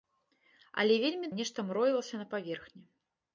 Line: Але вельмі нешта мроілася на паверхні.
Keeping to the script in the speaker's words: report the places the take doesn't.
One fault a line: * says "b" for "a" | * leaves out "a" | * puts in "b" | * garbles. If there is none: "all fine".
all fine